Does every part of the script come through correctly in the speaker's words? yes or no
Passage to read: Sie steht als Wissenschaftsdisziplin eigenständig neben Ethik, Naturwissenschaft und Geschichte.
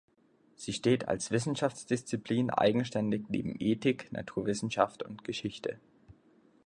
yes